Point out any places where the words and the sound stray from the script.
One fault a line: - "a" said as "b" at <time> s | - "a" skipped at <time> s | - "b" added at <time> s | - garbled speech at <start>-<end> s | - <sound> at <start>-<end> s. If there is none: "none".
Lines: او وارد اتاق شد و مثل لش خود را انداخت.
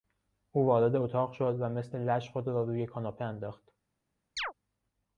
- "روی کاناپه" added at 2.6 s
- chirp at 4.4-4.5 s